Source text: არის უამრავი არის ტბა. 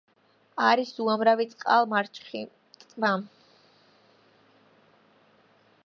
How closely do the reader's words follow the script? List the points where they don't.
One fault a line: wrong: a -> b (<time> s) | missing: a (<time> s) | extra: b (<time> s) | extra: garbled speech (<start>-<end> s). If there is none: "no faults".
wrong: არის -> წყალმარჩხი (1.5 s)